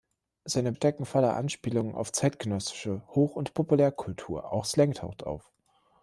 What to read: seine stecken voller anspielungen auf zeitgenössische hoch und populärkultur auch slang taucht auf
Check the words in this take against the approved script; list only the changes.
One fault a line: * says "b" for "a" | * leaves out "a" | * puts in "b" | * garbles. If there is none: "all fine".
all fine